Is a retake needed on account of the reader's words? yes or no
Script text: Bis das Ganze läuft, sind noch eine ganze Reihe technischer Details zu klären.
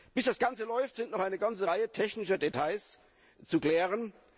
no